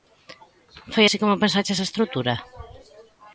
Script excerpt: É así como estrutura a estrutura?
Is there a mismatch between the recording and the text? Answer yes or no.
yes